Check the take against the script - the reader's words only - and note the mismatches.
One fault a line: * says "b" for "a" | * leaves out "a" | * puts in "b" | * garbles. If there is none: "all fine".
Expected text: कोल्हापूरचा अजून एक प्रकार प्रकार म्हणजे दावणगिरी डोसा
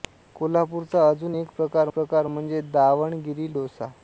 all fine